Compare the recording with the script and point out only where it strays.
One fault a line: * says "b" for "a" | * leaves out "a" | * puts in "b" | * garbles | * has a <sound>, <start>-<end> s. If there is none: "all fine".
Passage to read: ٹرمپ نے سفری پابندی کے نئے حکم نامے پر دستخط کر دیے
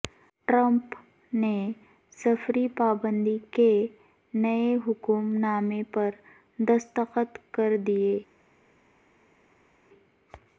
all fine